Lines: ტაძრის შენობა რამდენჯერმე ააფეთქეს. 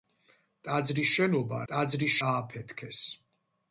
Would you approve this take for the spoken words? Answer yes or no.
no